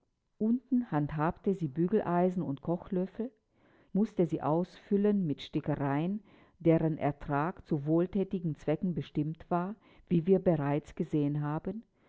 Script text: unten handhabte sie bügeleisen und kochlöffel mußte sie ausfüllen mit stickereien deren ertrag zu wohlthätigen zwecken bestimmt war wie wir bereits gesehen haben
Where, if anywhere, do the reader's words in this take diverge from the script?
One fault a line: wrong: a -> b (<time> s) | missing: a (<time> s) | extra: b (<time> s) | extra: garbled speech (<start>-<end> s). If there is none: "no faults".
no faults